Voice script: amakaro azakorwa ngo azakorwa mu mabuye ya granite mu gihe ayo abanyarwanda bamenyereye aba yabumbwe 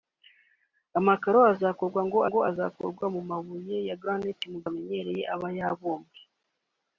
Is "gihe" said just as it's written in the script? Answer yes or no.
no